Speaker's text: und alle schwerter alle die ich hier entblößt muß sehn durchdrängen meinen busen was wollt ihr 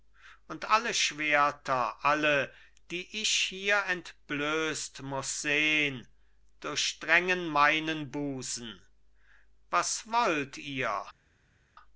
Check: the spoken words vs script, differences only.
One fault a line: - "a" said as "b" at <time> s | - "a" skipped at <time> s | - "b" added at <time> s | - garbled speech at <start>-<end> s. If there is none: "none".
none